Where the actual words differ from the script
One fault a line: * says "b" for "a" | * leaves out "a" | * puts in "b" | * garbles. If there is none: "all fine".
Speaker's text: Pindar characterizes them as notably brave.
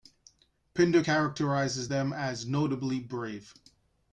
all fine